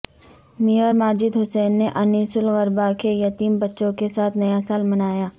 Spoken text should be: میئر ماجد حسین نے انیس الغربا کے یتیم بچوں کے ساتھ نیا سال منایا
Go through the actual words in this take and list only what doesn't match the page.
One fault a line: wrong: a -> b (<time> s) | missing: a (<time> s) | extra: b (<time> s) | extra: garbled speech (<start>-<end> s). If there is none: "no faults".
no faults